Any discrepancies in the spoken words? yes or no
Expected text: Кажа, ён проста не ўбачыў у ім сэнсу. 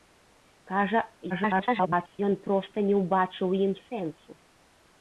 yes